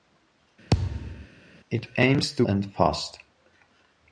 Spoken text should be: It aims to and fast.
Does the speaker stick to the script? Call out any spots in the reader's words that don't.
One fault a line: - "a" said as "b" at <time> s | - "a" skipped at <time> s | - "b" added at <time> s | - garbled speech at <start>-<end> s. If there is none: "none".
none